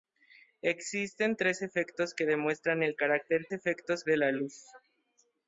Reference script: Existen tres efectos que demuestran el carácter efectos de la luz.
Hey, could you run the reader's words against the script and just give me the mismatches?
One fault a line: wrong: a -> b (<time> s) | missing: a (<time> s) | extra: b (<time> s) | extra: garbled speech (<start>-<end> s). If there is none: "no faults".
no faults